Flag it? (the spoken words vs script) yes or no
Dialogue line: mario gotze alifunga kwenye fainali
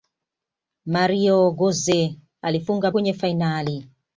no